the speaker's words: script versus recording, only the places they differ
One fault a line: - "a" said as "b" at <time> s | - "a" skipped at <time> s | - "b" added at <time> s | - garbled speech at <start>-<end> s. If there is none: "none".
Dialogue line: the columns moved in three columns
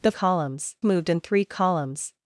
none